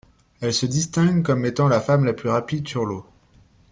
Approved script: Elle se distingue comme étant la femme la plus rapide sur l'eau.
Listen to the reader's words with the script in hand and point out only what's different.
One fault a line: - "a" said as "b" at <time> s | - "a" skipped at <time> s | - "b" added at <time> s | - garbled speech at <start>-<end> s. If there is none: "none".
none